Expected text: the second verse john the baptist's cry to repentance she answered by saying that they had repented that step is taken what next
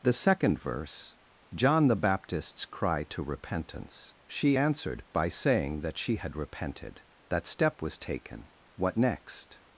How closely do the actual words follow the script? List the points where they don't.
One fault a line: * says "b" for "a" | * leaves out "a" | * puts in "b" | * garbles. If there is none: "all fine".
* says "she" for "they"
* says "was" for "is"